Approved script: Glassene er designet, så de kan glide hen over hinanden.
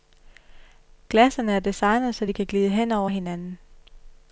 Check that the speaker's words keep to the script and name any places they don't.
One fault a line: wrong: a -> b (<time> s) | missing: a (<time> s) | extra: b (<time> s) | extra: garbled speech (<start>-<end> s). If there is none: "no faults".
no faults